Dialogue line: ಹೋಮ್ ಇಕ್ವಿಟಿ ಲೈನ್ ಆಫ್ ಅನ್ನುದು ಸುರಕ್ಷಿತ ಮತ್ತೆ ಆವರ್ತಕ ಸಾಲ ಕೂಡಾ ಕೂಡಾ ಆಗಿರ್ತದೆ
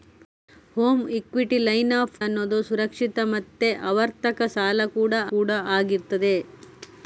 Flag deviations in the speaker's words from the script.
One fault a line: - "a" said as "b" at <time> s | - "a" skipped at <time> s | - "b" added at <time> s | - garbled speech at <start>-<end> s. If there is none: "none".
none